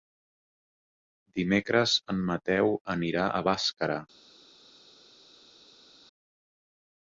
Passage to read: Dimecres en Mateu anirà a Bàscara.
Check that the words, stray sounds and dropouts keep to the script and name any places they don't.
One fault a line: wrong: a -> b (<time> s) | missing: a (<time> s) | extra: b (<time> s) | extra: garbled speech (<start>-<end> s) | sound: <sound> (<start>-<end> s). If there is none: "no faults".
no faults